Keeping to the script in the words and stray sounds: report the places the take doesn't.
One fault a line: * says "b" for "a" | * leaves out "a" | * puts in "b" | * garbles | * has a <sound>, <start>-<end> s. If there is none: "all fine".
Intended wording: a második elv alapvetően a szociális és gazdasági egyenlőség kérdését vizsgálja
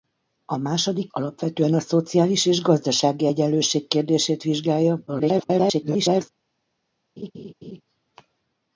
* leaves out "elv"
* garbles
* has a laugh, 7.2-7.8 s